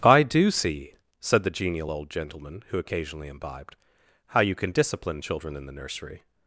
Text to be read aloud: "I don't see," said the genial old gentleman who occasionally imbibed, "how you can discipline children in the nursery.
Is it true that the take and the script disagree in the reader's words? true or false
true